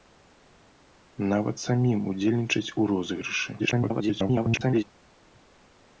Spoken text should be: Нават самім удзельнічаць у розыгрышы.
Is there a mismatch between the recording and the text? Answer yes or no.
yes